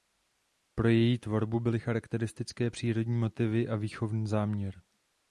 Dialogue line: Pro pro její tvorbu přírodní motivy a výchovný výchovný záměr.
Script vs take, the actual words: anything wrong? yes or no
yes